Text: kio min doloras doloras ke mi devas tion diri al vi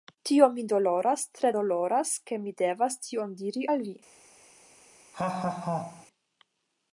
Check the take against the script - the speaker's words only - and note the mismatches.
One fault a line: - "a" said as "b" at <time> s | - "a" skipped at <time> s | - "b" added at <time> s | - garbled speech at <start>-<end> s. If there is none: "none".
- "kio" said as "tio" at 0.3 s
- "tre" added at 1.4 s